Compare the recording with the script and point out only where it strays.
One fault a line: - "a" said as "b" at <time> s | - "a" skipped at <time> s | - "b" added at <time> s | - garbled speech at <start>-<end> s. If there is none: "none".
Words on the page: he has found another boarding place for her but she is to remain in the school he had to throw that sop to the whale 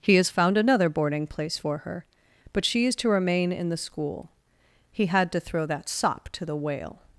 none